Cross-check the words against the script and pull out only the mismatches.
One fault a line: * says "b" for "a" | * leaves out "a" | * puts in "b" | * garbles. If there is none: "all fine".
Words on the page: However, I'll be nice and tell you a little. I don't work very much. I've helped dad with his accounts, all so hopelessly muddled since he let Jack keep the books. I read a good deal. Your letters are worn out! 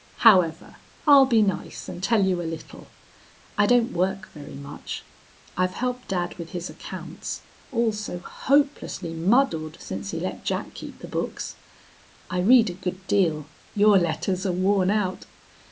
all fine